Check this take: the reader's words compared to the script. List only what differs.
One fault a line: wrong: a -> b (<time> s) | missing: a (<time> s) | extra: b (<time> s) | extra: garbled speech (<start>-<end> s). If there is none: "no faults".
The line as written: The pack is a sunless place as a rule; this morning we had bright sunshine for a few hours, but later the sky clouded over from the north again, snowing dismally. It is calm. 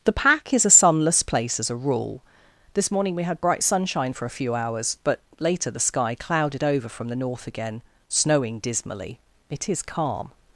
no faults